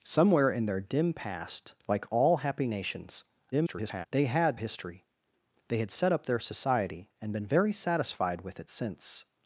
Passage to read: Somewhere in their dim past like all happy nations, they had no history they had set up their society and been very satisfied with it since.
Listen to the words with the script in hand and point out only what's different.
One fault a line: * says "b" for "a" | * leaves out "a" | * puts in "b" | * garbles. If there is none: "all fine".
* garbles
* leaves out "no"